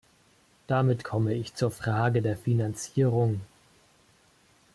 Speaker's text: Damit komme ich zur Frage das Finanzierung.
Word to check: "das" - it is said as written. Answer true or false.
false